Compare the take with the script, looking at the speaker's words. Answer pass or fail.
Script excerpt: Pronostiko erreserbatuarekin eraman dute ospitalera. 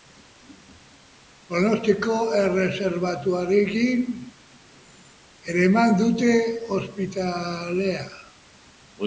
pass